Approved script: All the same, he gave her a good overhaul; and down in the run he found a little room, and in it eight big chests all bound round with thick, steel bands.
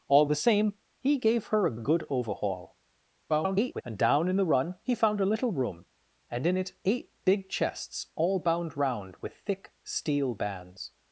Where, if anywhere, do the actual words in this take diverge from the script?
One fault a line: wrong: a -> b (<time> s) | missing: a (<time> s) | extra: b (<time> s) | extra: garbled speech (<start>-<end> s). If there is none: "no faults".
extra: a (1.7 s)
extra: garbled speech (3.3-3.8 s)